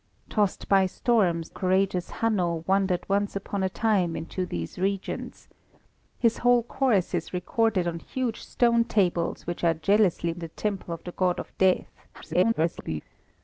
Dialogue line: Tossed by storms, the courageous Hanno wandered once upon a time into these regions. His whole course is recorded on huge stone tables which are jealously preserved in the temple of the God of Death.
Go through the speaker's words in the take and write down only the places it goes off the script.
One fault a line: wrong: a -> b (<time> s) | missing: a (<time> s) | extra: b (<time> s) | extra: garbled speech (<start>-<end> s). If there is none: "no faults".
missing: the (1.5 s)
missing: preserved (10.3 s)
extra: garbled speech (12.1-13.0 s)